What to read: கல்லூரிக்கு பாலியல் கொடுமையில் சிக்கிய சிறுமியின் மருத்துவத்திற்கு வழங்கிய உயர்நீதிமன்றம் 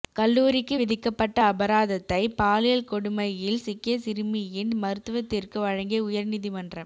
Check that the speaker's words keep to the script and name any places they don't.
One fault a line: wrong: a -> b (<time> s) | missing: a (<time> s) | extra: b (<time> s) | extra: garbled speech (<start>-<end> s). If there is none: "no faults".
extra: விதிக்கப்பட்ட அபராதத்தை (0.7 s)